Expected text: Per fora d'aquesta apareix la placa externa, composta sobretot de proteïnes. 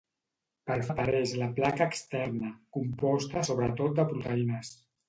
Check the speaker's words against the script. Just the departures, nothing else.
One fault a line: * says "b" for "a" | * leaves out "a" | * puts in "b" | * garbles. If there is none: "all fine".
* leaves out "fora d'aquesta"